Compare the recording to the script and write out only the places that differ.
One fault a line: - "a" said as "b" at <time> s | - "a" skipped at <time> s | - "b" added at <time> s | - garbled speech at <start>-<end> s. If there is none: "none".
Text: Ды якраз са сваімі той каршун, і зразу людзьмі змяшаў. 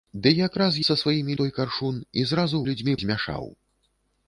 none